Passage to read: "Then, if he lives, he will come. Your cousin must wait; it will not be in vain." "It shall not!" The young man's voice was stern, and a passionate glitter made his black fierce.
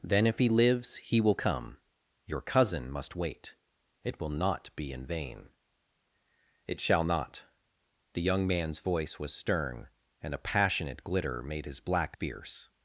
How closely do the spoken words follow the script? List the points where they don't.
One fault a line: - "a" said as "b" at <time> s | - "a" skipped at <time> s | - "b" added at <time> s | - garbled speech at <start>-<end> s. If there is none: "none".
none